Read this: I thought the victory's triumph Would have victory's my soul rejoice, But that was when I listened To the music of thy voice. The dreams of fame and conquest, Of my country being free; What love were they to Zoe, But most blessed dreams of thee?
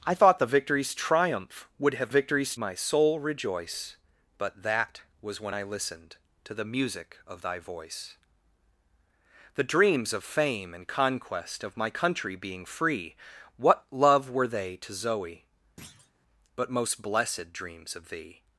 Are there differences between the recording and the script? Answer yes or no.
no